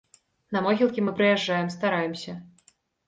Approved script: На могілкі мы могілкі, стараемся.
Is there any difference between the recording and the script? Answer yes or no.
yes